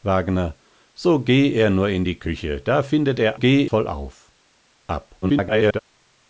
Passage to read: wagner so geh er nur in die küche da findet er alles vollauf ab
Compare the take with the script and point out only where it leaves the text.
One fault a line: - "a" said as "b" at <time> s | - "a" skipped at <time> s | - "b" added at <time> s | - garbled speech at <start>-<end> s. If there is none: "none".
- "alles" said as "geh" at 3.3 s
- garbled speech at 5.2-5.8 s